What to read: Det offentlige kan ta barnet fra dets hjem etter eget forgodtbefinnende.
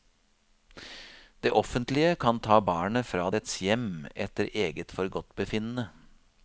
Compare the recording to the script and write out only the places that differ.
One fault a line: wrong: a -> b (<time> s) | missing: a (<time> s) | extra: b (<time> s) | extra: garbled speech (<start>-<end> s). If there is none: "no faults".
no faults